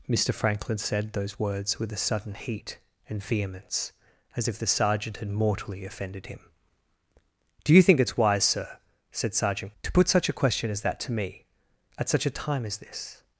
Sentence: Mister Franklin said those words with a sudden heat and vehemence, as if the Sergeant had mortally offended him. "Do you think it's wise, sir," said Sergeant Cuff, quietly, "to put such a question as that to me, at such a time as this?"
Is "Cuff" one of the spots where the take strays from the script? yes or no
yes